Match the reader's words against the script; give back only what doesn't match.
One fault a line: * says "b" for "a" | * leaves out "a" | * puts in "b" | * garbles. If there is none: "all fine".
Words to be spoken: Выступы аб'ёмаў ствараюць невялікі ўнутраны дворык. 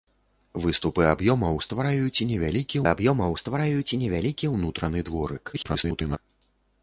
* puts in "аб'ёмаў ствараюць невялікі"
* garbles